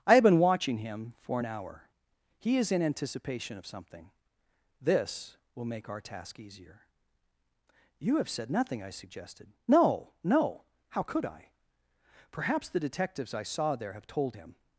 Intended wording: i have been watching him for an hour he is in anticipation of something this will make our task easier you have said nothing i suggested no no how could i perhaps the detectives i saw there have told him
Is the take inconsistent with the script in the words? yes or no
no